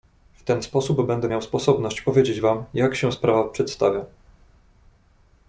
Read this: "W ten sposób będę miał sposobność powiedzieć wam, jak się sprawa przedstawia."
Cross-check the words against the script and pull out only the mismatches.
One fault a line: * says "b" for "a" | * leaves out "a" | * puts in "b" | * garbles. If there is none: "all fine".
all fine